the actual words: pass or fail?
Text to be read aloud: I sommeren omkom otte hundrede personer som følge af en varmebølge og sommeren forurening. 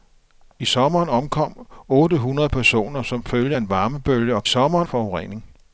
pass